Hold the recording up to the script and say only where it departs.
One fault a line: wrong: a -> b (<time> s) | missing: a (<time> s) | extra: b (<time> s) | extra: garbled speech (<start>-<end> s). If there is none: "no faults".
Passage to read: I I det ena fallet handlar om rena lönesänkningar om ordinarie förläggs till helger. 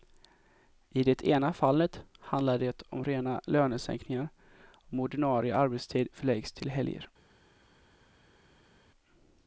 missing: I (1.0 s)
extra: det (2.6 s)
extra: arbetstid (5.6 s)